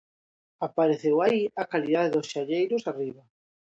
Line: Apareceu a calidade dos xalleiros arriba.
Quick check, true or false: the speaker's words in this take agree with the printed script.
false